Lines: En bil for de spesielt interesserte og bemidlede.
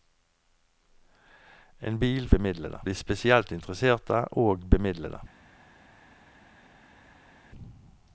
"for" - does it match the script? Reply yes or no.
no